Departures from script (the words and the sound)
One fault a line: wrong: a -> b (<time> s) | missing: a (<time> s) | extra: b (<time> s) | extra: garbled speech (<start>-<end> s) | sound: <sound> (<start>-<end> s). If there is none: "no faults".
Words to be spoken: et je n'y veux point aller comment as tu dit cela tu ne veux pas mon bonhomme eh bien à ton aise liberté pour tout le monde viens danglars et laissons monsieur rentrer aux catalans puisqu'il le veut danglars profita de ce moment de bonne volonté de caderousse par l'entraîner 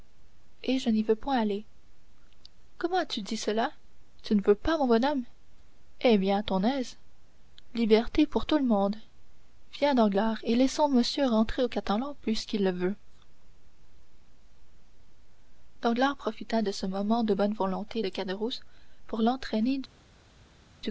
wrong: par -> pour (19.1 s)